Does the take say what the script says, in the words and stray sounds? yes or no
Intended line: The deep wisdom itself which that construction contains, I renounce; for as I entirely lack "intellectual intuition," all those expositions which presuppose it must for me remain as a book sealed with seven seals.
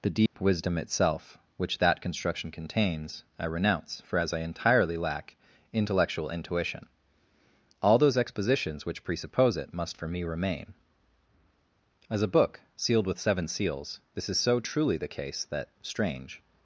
no